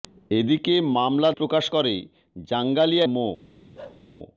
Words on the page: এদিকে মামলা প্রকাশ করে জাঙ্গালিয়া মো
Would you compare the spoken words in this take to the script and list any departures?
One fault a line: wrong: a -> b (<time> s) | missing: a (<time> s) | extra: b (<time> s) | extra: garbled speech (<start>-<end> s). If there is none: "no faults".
no faults